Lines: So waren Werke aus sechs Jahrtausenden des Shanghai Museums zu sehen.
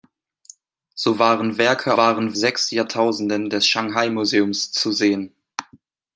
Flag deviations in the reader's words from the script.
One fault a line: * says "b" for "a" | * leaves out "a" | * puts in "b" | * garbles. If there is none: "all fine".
* says "waren" for "aus"